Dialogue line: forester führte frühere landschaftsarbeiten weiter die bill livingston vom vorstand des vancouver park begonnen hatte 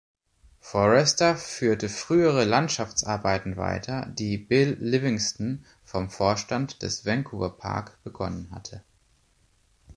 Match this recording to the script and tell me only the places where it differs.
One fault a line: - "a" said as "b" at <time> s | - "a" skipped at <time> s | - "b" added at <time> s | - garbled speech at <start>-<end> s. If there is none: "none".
none